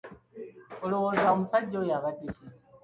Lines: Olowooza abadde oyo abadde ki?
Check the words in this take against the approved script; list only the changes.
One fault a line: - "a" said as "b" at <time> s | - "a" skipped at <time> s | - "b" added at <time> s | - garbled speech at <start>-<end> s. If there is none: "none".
- "abadde" said as "omusajja" at 1.3 s